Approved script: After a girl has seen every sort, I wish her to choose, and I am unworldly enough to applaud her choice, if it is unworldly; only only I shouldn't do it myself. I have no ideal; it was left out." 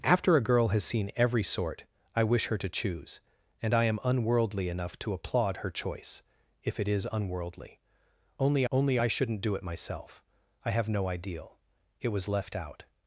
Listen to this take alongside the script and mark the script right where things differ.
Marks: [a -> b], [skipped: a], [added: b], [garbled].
After a girl has seen every sort, I wish her to choose, and I am unworldly enough to applaud her choice, if it is unworldly; only only I shouldn't do it myself. I have no ideal; it was left out."